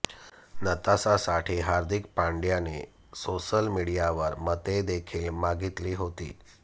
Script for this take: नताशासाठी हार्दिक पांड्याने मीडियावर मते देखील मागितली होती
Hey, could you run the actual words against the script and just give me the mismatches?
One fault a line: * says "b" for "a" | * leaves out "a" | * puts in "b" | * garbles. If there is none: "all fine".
* puts in "सोशल"